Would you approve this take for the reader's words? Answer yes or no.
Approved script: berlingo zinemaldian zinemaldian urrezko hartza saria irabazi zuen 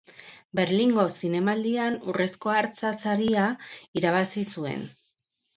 no